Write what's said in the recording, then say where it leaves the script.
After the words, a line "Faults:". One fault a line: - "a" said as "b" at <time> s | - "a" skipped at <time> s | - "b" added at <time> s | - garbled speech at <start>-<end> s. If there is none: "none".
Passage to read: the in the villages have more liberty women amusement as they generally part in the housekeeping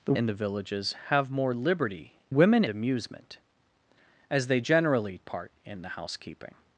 the in the villages have more liberty women amusement as they generally part in the housekeeping
Faults:
none